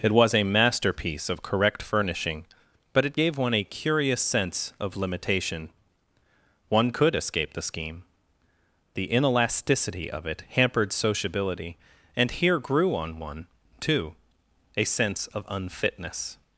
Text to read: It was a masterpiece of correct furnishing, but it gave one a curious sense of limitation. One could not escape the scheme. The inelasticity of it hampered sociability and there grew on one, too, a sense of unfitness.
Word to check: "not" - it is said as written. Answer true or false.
false